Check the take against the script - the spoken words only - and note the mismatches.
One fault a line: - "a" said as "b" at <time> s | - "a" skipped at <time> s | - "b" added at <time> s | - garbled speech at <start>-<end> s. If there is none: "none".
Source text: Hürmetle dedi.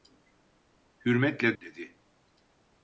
none